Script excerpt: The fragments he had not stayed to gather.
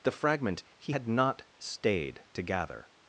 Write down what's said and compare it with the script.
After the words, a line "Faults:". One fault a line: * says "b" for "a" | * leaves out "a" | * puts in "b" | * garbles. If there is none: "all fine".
The fragment he had not stayed to gather.
Faults:
* says "fragment" for "fragments"